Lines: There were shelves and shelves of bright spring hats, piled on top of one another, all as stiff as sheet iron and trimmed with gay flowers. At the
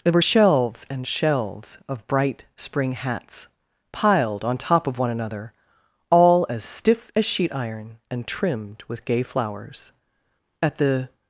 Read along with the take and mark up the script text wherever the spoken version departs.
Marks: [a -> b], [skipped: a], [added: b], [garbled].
There were shelves and shelves of bright spring hats, piled on top of one another, all as stiff as sheet iron and trimmed with gay flowers. At the